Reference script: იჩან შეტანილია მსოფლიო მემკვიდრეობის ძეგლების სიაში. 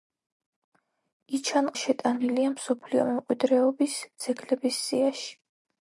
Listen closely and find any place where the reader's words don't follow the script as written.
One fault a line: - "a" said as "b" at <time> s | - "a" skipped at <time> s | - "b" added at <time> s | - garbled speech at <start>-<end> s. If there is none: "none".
none